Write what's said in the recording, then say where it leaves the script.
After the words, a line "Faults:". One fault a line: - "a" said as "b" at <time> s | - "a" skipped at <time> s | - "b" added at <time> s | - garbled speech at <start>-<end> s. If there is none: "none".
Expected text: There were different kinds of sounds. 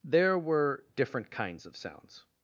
There were different kinds of sounds.
Faults:
none